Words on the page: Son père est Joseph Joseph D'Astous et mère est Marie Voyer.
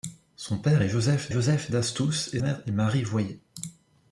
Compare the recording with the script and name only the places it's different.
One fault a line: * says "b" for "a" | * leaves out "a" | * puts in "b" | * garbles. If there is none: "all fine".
all fine